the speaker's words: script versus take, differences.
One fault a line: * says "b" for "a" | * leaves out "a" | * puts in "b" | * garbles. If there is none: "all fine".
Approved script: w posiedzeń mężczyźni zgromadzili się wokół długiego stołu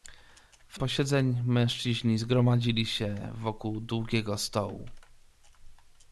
all fine